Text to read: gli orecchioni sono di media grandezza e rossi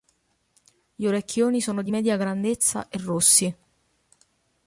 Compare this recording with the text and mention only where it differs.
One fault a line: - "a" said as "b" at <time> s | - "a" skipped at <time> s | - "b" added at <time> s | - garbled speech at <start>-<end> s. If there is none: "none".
none